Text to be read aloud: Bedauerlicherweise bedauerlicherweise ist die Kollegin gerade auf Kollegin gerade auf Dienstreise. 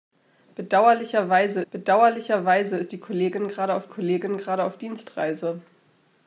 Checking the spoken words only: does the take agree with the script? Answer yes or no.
yes